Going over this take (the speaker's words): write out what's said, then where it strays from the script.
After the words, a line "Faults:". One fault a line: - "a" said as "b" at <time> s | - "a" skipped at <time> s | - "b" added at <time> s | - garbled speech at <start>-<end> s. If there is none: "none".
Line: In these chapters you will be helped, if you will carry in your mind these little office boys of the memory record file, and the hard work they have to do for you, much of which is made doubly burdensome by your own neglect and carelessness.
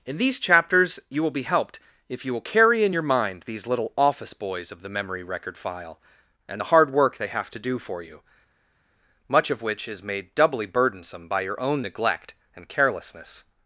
In these chapters you will be helped, if you will carry in your mind these little office boys of the memory record file, and the hard work they have to do for you, much of which is made doubly burdensome by your own neglect and carelessness.
Faults:
none